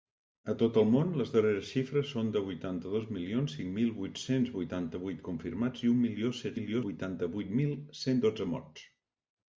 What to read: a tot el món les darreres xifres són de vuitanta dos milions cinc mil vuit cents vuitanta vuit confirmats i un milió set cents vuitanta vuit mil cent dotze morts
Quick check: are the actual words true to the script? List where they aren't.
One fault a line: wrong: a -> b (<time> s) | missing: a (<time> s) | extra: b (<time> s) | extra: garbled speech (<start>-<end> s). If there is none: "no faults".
wrong: cents -> milió (6.6 s)